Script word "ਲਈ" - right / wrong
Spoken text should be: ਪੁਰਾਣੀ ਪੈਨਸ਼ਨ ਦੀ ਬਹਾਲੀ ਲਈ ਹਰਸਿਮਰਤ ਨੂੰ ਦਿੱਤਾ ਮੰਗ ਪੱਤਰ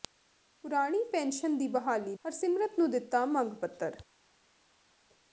wrong